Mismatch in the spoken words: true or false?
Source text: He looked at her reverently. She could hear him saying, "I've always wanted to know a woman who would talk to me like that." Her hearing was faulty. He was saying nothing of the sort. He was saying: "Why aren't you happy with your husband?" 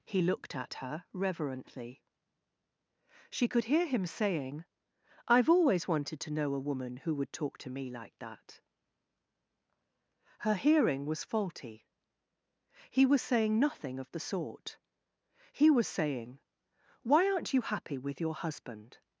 false